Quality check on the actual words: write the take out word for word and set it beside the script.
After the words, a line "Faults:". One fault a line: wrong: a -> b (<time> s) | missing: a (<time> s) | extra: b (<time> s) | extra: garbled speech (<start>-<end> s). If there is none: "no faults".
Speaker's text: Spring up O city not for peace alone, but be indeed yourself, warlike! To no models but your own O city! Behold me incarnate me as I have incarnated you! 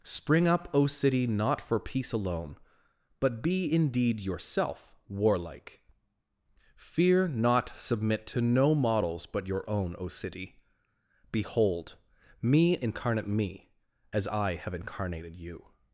Spring up O city not for peace alone, but be indeed yourself, warlike! Fear not submit to no models but your own O city! Behold me incarnate me as I have incarnated you!
Faults:
extra: Fear not submit (6.7 s)